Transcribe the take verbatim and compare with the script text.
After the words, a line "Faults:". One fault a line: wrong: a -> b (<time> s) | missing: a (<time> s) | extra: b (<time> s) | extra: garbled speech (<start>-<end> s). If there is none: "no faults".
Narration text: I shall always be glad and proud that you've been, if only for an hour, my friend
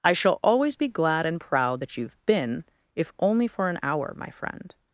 I shall always be glad and proud that you've been, if only for an hour, my friend
Faults:
no faults